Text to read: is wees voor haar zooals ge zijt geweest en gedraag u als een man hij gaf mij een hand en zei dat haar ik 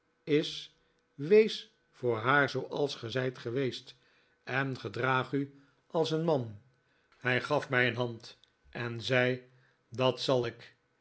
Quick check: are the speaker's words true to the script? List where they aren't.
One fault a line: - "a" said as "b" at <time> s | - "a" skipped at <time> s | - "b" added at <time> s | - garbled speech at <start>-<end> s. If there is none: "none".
- "haar" said as "zal" at 10.2 s